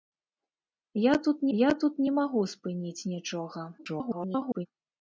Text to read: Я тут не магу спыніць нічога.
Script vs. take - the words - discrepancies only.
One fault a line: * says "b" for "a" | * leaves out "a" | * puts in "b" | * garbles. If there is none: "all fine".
* puts in "я тут"
* garbles